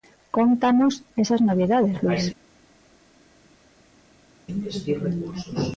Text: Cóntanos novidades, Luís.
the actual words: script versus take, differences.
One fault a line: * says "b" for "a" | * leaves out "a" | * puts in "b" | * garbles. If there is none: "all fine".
* puts in "esas"